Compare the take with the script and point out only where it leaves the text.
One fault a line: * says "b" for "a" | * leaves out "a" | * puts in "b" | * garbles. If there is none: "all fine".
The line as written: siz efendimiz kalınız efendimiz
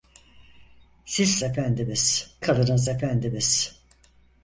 all fine